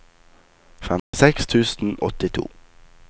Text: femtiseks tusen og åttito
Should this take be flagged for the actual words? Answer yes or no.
yes